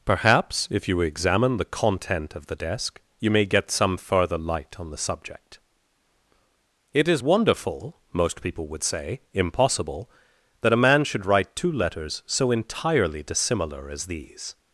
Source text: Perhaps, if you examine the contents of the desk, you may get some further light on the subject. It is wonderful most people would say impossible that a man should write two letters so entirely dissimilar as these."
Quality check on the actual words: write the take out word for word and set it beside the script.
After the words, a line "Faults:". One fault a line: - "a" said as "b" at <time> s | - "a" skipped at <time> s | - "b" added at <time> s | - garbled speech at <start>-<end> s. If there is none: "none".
Perhaps, if you examine the content of the desk, you may get some further light on the subject. It is wonderful most people would say impossible that a man should write two letters so entirely dissimilar as these."
Faults:
- "contents" said as "content" at 1.6 s